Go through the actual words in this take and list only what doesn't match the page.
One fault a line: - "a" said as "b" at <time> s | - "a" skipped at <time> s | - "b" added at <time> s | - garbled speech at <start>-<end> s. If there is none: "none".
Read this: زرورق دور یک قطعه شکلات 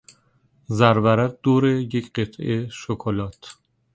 none